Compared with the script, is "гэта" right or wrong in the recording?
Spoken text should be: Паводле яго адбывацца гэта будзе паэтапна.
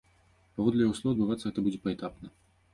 right